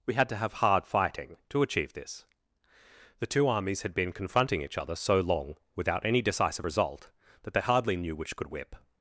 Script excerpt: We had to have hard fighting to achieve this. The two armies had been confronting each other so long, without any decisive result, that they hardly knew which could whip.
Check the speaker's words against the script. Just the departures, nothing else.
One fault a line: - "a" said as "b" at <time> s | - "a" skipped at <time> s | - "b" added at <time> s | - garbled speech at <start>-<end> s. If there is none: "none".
none